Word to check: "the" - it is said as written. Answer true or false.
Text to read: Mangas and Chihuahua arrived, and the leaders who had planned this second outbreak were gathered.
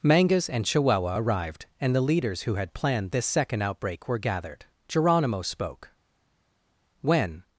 true